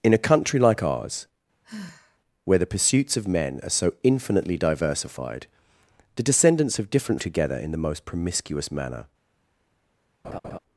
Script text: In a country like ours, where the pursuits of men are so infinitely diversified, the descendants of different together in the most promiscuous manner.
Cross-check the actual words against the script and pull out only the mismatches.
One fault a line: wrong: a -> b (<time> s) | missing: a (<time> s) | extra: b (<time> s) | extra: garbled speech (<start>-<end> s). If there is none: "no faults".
no faults